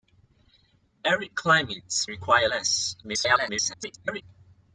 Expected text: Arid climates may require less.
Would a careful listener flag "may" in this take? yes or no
yes